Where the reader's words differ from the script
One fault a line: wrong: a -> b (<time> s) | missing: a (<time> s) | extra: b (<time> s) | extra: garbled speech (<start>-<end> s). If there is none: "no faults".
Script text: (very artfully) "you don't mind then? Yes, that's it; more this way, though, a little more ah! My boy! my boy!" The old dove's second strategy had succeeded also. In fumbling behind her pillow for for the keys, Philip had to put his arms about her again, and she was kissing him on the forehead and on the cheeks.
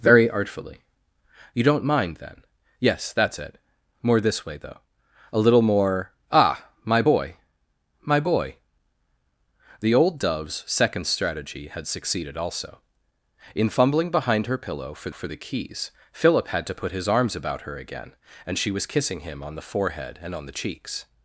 no faults